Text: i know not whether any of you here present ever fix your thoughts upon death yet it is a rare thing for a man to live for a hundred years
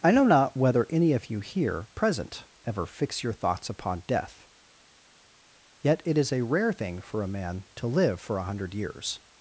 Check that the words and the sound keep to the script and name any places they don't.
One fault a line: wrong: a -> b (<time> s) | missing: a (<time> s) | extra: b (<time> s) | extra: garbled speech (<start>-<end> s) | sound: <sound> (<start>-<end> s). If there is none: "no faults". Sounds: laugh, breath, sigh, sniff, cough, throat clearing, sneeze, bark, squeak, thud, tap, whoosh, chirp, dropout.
no faults